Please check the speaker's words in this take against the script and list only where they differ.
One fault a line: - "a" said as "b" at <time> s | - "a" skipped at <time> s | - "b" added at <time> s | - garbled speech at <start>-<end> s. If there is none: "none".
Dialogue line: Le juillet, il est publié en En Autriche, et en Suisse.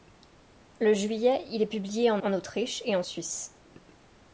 none